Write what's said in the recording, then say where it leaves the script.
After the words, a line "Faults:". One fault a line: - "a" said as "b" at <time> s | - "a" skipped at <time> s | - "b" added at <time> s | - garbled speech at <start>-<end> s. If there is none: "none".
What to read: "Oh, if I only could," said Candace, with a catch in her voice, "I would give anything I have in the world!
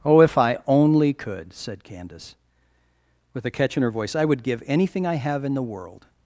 "Oh, if I only could," said Candace, with a catch in her voice, "I would give anything I have in the world!
Faults:
none